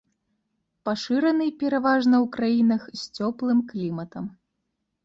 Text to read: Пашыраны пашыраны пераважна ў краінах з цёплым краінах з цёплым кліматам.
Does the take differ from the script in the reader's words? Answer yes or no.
yes